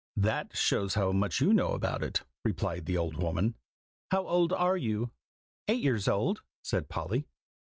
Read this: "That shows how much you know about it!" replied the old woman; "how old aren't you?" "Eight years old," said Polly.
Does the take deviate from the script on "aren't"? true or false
true